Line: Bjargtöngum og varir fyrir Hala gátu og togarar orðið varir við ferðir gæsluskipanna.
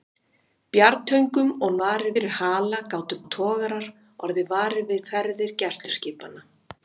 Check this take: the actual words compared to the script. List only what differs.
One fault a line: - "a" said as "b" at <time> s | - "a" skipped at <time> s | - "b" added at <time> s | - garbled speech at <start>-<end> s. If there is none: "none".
none